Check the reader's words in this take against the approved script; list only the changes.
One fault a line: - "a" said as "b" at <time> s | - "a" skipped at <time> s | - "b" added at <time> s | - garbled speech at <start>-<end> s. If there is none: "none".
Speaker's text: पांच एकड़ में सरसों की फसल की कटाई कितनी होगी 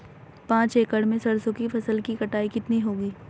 none